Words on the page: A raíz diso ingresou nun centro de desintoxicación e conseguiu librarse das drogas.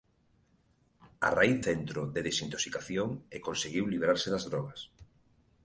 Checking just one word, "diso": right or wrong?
wrong